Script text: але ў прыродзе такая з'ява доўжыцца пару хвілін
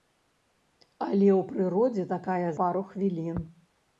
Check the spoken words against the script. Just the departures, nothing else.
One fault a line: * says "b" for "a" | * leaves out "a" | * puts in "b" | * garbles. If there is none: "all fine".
* leaves out "з'ява доўжыцца"